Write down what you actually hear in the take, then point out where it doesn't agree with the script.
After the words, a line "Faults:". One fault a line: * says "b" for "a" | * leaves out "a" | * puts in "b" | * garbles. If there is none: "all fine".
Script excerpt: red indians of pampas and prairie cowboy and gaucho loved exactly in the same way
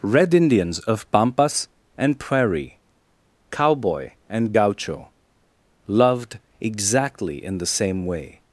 red indians of pampas and prairie cowboy and gaucho loved exactly in the same way
Faults:
all fine